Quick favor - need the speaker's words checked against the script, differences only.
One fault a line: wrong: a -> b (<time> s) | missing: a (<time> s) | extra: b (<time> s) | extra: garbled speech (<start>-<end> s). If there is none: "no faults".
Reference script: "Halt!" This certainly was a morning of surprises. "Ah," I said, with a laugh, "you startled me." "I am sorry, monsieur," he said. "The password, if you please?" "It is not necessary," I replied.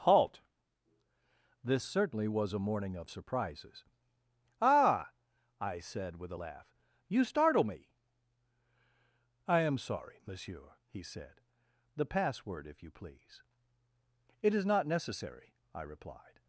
wrong: startled -> startle (7.2 s)